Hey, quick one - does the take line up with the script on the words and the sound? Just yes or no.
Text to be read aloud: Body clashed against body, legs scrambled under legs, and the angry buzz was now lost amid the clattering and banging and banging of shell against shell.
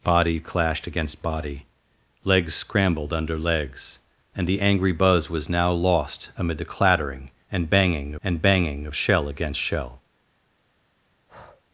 no